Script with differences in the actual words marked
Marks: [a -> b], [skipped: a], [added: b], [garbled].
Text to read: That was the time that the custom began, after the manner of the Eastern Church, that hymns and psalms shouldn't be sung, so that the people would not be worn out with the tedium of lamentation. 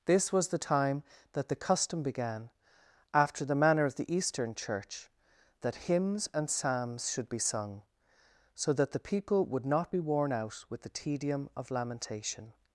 [That -> This] was the time that the custom began, after the manner of the Eastern Church, that hymns and psalms [shouldn't -> should] be sung, so that the people would not be worn out with the tedium of lamentation.